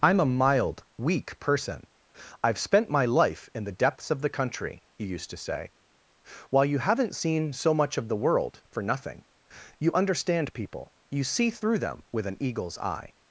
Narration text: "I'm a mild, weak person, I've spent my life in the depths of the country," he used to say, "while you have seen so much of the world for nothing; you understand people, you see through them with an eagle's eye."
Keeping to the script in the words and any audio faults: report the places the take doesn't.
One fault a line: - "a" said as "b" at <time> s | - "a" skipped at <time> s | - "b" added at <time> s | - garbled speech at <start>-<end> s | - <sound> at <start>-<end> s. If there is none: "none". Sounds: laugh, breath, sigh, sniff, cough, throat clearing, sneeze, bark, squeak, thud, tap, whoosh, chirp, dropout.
- "have" said as "haven't" at 6.8 s